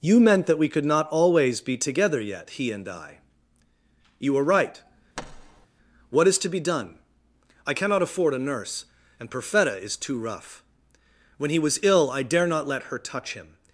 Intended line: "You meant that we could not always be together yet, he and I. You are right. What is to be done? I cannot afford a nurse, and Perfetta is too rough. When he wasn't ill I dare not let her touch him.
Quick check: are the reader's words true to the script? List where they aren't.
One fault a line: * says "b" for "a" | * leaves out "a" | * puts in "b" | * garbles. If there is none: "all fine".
* says "was" for "wasn't"